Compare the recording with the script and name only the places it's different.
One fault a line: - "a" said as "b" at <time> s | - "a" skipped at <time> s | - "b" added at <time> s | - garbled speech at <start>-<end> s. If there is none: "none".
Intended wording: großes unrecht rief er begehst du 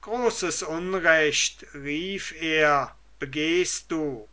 none